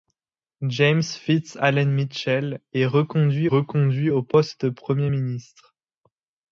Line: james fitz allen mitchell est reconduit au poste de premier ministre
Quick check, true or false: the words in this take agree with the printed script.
false